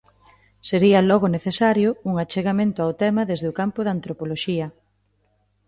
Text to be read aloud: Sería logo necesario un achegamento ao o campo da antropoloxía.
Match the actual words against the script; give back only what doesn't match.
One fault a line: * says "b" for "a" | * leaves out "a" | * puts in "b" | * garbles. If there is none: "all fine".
* puts in "tema desde"